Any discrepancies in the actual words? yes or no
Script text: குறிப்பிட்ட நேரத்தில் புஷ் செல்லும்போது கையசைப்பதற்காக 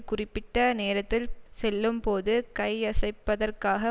yes